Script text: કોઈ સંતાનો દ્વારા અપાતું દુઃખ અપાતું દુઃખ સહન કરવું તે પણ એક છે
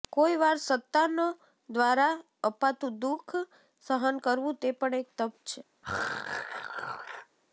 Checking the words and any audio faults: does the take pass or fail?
fail